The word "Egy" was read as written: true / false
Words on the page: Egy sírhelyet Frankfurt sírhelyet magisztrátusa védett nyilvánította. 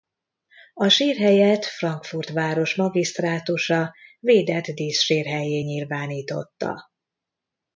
false